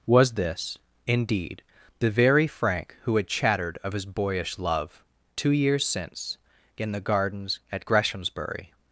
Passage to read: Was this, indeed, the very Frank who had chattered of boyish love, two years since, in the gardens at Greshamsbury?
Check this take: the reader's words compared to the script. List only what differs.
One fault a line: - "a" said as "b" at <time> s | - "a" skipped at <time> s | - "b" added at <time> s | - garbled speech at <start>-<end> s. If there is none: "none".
- "his" added at 3.9 s